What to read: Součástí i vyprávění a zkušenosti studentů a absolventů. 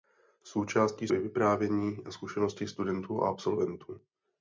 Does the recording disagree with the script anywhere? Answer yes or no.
no